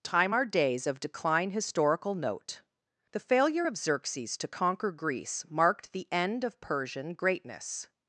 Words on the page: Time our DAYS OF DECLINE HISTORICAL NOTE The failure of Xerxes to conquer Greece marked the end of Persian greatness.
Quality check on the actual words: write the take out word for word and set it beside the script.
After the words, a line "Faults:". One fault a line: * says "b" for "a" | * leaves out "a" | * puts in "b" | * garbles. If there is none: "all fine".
Time our DAYS OF DECLINE HISTORICAL NOTE The failure of Xerxes to conquer Greece marked the end of Persian greatness.
Faults:
all fine